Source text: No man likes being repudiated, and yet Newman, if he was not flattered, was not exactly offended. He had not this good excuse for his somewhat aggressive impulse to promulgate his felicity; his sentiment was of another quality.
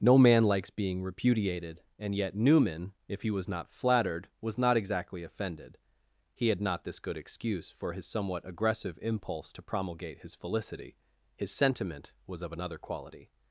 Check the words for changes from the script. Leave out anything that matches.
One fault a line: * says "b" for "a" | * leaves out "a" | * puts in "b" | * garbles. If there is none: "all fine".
all fine